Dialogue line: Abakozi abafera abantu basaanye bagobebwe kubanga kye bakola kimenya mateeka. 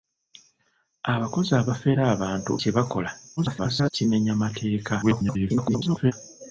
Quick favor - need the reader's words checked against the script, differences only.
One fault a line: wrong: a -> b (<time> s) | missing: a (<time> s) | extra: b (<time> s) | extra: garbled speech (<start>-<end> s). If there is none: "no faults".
missing: basaanye bagobebwe kubanga (2.5 s)
extra: garbled speech (3.4-3.9 s)
extra: garbled speech (5.0-6.1 s)